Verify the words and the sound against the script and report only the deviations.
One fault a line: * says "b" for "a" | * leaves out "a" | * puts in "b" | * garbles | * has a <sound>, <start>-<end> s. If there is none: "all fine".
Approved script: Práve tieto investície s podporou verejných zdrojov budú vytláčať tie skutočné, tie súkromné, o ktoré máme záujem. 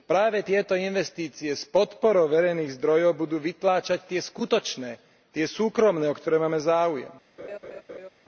* has a laugh, 7.4-8.1 s